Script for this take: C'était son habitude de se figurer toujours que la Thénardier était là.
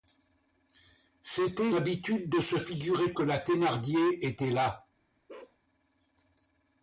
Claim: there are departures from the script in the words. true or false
true